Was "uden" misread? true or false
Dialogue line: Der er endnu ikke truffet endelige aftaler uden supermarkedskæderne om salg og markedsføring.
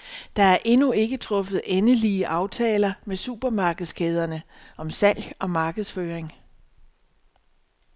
true